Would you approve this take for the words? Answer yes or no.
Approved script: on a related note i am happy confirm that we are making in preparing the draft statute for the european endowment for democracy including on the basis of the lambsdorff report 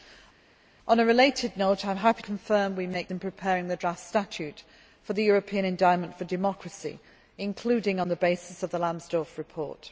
yes